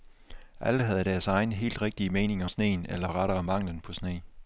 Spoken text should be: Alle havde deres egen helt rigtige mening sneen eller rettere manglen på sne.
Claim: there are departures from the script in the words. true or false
false